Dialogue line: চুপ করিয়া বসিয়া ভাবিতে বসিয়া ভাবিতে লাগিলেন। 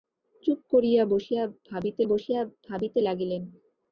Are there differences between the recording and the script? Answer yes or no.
no